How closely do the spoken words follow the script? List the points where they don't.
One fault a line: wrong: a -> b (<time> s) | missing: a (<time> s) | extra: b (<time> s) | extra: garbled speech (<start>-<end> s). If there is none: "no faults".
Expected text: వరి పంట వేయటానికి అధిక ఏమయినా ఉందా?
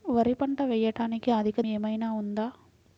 no faults